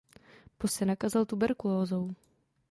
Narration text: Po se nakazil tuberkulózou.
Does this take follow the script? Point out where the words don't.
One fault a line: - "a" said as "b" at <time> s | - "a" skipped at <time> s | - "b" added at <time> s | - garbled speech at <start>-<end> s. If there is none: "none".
none